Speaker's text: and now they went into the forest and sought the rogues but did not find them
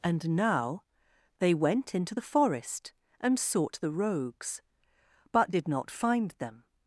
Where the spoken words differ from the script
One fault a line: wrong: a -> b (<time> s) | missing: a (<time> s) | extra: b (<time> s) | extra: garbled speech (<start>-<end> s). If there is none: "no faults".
no faults